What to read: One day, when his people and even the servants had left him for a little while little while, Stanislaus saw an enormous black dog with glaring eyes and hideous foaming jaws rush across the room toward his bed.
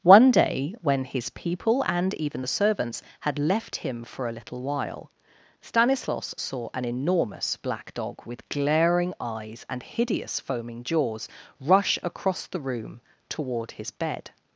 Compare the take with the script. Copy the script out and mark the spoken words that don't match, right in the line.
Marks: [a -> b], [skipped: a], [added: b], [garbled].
One day, when his people and even the servants had left him for a little while [skipped: little while,] Stanislaus saw an enormous black dog with glaring eyes and hideous foaming jaws rush across the room toward his bed.